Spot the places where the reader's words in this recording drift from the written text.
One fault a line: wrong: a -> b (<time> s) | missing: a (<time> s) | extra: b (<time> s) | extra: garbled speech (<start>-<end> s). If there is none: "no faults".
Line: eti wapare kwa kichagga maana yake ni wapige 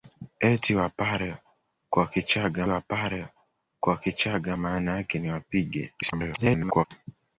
extra: wapare kwa kichagga (2.7 s)
extra: garbled speech (6.0-6.9 s)